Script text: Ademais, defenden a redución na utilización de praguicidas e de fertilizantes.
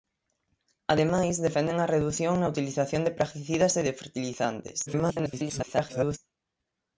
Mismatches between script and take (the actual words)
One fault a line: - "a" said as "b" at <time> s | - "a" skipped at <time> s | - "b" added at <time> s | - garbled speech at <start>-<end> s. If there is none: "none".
- garbled speech at 4.9-6.2 s